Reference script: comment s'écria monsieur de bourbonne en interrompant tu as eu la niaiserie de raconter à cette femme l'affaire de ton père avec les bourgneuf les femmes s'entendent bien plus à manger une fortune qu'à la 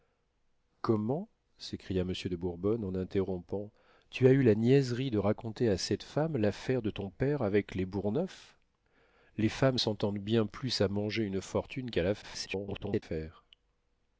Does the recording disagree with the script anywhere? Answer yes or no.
yes